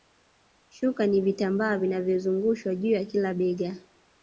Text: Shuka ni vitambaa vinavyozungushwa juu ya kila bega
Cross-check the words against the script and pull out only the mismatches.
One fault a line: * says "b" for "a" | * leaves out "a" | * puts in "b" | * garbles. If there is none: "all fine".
all fine